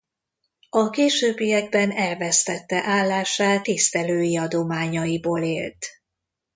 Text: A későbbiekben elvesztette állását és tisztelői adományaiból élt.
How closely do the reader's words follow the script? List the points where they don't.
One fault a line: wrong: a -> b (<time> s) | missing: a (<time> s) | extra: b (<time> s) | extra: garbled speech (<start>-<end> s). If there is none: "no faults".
missing: és (3.7 s)